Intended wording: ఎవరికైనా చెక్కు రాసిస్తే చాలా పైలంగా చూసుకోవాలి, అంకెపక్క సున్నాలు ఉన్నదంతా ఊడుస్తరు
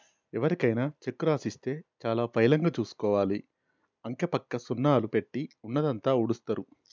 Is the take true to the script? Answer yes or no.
no